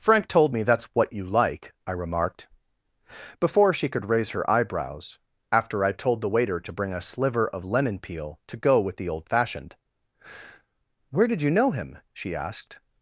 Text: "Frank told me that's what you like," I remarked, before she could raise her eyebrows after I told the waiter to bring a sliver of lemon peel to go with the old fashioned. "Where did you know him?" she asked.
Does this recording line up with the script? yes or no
yes